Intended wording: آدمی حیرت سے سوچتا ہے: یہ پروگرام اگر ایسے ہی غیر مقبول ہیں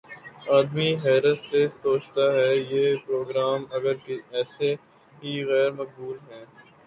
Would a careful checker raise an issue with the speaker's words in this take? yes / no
no